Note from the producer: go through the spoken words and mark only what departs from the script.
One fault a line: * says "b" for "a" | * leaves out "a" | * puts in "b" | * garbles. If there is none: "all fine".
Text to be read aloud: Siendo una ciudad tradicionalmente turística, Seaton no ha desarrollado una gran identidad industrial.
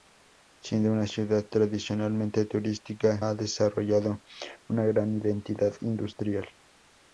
* leaves out "Seaton no"